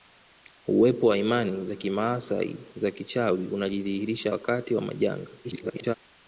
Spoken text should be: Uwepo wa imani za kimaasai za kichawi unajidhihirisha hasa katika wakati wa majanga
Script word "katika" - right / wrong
wrong